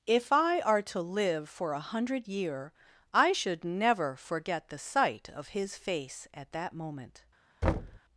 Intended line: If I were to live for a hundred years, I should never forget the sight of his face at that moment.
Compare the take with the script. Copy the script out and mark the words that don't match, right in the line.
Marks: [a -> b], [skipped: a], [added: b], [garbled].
If I [were -> are] to live for a hundred [years, -> year] I should never forget the sight of his face at that moment.